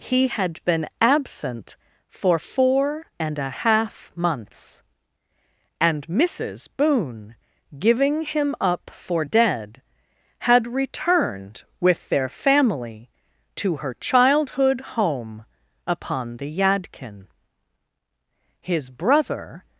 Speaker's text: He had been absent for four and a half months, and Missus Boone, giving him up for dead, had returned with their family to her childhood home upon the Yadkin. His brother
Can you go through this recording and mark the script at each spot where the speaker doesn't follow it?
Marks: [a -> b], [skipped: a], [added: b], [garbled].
He had been absent for four and a half months, and Missus Boone, giving him up for dead, had returned with their family to her childhood home upon the Yadkin. His brother